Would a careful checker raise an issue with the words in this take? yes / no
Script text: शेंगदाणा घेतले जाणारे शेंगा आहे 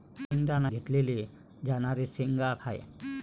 no